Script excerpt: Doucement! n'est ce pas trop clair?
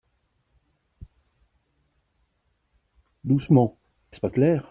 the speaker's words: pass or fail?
fail